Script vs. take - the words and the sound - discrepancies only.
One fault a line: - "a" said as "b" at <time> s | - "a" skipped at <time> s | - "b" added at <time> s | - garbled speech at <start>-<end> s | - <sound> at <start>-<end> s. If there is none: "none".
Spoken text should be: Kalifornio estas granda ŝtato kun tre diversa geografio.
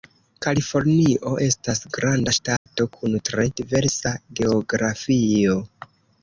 - dropout at 2.6-2.7 s